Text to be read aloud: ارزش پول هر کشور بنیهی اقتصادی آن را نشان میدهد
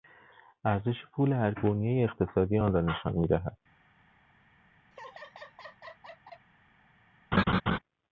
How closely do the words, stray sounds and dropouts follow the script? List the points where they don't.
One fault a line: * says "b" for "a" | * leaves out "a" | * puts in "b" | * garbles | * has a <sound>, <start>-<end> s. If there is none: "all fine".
* leaves out "کشور"
* has a laugh, 4.9-6.5 s
* has a laugh, 7.3-7.8 s